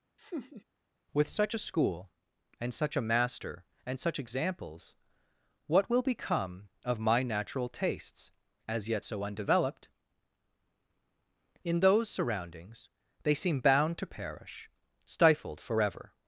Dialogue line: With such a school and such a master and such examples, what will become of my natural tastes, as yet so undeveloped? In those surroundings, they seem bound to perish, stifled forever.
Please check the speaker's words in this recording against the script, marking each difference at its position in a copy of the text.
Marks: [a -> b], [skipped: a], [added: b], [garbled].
With such a school and such a master and such examples, what will become of my natural tastes, as yet so undeveloped? In those surroundings, they seem bound to perish, stifled forever.